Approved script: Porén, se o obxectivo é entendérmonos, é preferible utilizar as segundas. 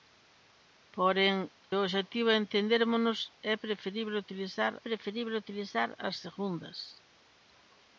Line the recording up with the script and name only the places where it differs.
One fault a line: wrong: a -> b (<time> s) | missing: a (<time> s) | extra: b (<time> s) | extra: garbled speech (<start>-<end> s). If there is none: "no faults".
missing: se (1.4 s)
extra: preferible utilizar (4.9 s)